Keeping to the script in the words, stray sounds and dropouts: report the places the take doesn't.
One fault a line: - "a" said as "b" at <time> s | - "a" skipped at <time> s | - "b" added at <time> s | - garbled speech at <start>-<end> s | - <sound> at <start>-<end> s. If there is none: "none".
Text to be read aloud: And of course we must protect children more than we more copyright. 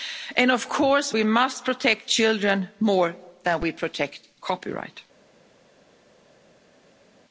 - "more" said as "protect" at 3.7 s